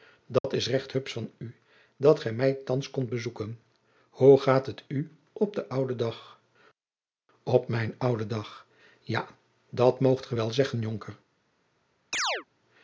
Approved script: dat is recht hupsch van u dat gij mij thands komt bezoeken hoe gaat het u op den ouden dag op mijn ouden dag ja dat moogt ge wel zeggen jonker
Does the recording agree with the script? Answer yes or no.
yes